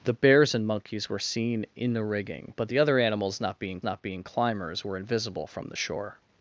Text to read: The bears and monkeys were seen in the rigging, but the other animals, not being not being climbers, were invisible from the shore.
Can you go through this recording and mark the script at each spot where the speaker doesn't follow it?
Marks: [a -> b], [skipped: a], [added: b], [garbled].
The bears and monkeys were seen in the rigging, but the other animals, not being not being climbers, were invisible from the shore.